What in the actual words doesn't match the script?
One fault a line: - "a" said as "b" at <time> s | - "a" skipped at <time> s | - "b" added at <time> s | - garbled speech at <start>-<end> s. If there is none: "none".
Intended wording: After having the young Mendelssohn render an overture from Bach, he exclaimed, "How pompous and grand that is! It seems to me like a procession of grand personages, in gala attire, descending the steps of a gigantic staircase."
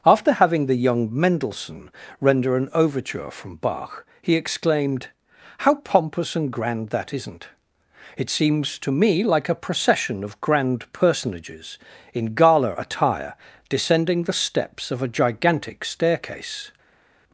- "is" said as "isn't" at 7.1 s